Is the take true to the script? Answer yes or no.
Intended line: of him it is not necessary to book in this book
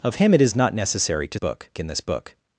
yes